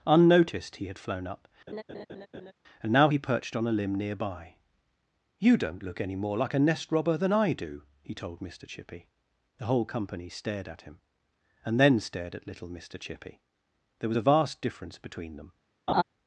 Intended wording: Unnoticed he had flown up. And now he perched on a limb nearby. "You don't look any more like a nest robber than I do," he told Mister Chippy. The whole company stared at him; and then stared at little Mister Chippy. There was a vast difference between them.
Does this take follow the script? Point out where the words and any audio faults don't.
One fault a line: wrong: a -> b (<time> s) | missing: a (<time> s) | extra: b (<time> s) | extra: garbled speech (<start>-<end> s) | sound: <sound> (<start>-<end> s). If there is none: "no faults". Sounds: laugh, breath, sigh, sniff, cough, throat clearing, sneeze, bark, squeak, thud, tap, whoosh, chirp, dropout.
sound: laugh (1.7-2.5 s)
sound: laugh (15.9-16.0 s)